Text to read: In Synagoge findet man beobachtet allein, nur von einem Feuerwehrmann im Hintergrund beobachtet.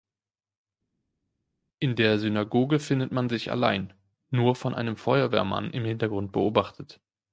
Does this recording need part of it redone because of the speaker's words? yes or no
yes